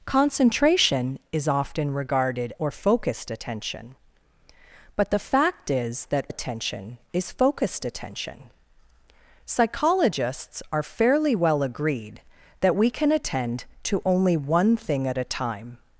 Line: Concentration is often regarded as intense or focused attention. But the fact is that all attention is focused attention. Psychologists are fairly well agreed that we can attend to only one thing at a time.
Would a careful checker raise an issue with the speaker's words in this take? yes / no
yes